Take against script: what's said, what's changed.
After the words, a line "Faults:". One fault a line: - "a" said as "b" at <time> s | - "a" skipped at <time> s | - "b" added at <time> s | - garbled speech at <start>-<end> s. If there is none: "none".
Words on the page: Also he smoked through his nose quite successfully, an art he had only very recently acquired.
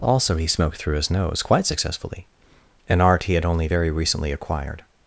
Also he smoked through his nose quite successfully, an art he had only very recently acquired.
Faults:
none